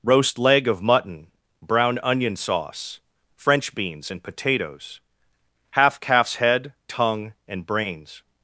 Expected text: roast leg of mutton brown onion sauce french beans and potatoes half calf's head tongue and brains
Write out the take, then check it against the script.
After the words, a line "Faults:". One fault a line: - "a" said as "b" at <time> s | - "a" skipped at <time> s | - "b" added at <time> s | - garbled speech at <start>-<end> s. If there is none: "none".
roast leg of mutton brown onion sauce french beans and potatoes half calf's head tongue and brains
Faults:
none